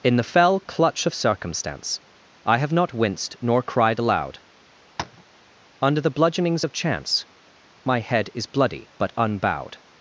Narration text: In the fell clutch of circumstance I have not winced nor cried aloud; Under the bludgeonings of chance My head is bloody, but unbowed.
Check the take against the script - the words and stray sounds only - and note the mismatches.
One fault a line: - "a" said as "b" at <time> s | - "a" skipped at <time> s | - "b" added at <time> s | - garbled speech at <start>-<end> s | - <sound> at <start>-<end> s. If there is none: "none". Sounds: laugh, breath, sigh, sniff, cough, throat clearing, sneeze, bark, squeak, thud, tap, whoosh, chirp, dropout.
- tap at 5.0-5.2 s